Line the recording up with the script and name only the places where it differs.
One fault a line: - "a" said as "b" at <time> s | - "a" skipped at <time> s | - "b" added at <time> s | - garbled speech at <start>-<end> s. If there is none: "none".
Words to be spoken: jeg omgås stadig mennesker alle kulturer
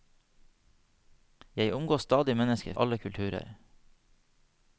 none